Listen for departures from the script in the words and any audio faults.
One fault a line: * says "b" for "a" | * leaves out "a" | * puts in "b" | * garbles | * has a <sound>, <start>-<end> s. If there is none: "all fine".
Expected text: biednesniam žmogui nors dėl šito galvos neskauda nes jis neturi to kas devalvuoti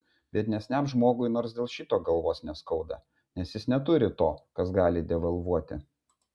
* puts in "gali"